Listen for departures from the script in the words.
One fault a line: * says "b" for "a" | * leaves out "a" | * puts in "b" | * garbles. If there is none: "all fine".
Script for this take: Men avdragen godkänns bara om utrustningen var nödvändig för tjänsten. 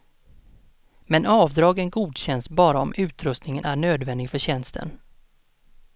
* says "är" for "var"